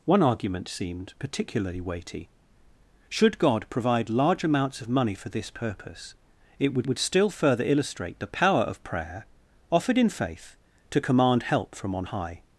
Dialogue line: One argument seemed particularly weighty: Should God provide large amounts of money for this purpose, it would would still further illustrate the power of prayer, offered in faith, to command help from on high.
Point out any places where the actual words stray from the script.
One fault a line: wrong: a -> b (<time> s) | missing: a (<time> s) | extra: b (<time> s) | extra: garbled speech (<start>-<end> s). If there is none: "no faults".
no faults